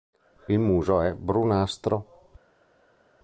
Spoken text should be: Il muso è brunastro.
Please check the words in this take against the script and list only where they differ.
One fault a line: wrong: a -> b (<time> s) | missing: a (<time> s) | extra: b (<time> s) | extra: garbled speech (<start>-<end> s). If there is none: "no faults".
no faults